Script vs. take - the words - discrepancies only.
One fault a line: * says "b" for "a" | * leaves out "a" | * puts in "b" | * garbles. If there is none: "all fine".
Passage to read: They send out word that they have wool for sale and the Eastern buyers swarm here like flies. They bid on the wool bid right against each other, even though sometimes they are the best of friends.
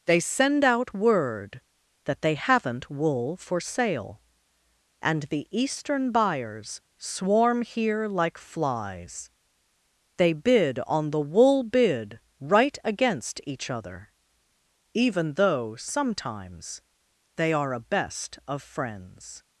* says "haven't" for "have"
* says "a" for "the"